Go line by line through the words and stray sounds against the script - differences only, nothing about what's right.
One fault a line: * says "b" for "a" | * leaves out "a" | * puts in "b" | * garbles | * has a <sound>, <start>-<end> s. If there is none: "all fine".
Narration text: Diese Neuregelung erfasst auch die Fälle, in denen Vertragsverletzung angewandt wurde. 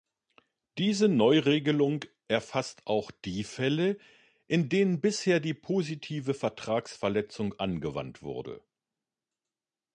* puts in "bisher die positive"